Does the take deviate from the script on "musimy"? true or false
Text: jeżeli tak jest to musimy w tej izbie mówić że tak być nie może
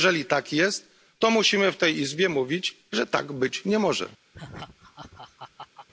false